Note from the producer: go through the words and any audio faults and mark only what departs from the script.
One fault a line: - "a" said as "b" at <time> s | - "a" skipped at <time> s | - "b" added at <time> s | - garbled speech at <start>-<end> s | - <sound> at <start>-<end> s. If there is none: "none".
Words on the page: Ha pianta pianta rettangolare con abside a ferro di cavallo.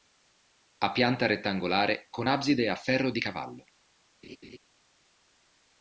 - "pianta" skipped at 1.3 s
- laugh at 4.2-4.6 s